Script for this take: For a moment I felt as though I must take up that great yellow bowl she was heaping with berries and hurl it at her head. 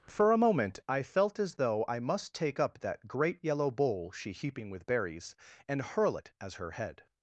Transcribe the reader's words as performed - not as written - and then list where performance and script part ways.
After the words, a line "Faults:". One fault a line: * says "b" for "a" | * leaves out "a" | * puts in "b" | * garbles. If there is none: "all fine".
For a moment I felt as though I must take up that great yellow bowl she heaping with berries and hurl it as her head.
Faults:
* leaves out "was"
* says "as" for "at"